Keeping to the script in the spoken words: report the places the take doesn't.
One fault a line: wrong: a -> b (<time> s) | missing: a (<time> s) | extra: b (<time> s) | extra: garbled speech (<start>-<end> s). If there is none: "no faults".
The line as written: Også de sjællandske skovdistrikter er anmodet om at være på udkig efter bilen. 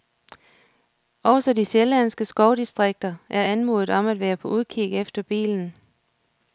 no faults